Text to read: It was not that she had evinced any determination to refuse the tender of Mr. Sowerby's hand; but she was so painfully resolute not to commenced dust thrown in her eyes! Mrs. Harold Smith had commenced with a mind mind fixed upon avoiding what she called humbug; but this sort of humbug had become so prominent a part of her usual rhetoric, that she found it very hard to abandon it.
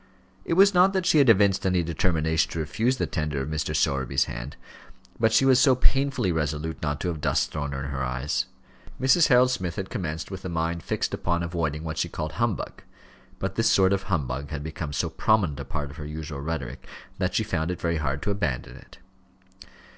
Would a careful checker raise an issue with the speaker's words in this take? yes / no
yes